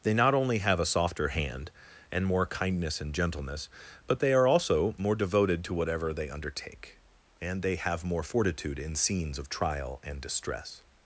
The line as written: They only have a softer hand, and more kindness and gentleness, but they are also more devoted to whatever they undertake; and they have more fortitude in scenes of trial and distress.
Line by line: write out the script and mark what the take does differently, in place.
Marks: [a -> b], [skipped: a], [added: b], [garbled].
They [added: not] only have a softer hand, and more kindness and gentleness, but they are also more devoted to whatever they undertake; and they have more fortitude in scenes of trial and distress.